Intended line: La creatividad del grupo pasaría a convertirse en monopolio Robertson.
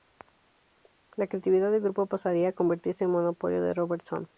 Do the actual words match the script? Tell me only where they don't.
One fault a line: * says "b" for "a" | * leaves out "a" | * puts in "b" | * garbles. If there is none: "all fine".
* puts in "de"